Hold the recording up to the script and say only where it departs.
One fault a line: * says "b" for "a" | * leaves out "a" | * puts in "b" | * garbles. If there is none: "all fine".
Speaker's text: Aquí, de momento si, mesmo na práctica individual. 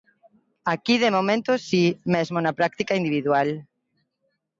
all fine